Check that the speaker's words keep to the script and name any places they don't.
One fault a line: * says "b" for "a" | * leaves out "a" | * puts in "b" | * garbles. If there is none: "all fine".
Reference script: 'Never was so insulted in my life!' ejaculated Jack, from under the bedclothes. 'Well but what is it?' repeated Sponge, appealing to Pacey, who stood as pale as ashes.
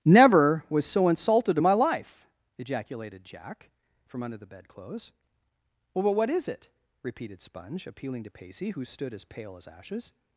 all fine